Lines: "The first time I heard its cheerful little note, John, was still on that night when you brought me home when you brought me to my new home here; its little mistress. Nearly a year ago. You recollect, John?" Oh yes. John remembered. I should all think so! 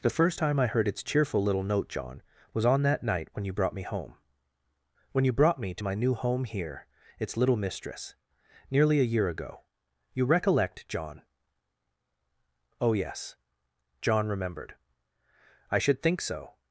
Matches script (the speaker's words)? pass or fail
fail